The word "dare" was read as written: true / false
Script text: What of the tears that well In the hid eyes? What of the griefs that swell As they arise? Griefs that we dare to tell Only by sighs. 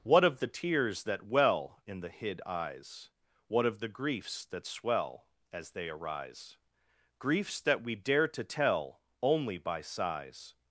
true